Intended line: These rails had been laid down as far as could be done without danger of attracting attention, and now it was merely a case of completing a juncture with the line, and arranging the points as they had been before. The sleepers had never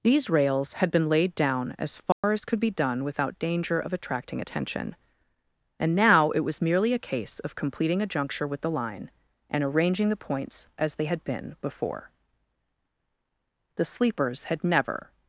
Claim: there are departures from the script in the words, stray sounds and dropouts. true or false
true